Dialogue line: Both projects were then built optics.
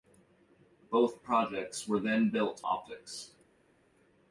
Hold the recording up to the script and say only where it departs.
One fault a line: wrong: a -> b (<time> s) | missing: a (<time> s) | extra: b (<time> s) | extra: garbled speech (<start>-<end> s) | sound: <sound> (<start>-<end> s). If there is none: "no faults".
no faults